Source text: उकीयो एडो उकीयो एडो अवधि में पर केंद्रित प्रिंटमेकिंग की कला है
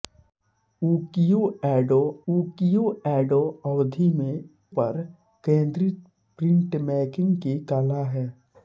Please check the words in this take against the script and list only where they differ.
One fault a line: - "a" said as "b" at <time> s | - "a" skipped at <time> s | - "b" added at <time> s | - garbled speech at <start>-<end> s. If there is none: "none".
none